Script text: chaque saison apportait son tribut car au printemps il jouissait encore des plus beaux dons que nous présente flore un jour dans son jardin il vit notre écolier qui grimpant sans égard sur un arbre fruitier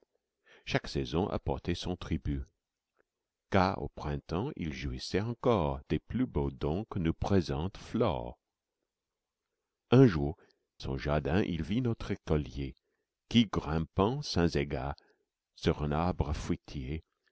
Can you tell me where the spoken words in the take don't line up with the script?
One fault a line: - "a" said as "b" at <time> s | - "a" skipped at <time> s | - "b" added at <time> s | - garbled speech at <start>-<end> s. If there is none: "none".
- "dans" skipped at 10.4 s